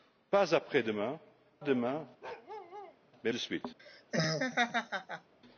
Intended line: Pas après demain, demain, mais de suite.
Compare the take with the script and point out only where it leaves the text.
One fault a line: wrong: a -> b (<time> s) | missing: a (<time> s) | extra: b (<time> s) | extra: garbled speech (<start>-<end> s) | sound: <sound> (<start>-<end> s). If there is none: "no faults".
sound: bark (2.2-3.0 s)
sound: laugh (3.8-5.3 s)